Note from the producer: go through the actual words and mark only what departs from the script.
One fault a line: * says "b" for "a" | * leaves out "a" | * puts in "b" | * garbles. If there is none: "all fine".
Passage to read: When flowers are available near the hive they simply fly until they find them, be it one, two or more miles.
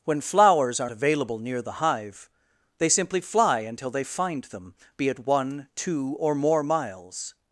all fine